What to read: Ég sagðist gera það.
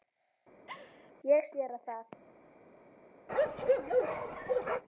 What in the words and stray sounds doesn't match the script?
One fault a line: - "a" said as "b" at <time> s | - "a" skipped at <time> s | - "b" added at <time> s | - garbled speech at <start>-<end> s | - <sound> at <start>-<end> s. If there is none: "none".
- laugh at 0.7-1.1 s
- "sagðist" skipped at 1.5 s
- bark at 3.3-4.8 s